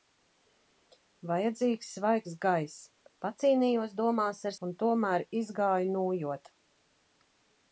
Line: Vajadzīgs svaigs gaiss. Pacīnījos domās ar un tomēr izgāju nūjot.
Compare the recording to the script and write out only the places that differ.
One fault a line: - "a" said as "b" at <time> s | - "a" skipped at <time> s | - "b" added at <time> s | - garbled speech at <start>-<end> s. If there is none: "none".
none